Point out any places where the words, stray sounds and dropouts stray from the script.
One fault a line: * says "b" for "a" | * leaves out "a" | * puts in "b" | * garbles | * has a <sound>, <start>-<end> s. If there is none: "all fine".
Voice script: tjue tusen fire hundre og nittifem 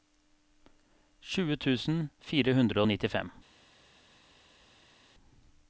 all fine